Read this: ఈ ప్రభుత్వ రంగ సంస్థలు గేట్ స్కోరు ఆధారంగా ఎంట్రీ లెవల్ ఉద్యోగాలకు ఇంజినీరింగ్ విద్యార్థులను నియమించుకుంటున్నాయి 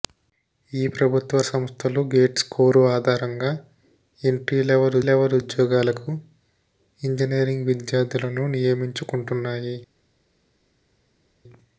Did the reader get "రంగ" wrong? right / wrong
wrong